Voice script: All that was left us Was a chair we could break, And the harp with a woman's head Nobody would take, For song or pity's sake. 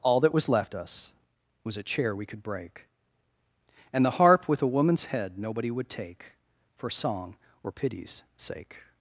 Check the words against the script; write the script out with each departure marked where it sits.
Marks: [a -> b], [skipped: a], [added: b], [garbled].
All that was left us Was a chair we could break, And the harp with a woman's head Nobody would take, For song or pity's sake.